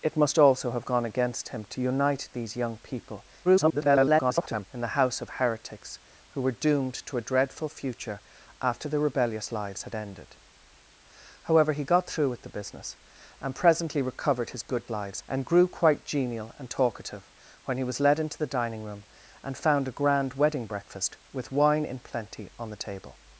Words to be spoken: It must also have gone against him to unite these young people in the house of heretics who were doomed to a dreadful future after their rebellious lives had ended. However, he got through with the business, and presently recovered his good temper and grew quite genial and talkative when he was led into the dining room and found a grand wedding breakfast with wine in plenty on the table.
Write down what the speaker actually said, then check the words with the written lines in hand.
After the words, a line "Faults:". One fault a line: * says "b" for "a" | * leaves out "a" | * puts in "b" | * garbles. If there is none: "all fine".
It must also have gone against him to unite these young people [garbled] in the house of heretics who were doomed to a dreadful future after their rebellious lives had ended. However, he got through with the business, and presently recovered his good lives and grew quite genial and talkative when he was led into the dining room and found a grand wedding breakfast with wine in plenty on the table.
Faults:
* garbles
* says "lives" for "temper"